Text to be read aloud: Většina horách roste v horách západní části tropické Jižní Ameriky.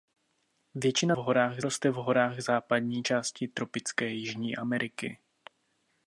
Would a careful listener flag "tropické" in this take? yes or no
no